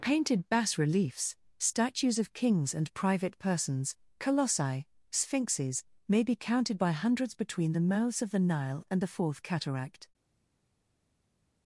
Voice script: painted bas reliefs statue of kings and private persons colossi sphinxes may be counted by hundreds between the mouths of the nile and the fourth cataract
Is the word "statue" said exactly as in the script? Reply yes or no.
no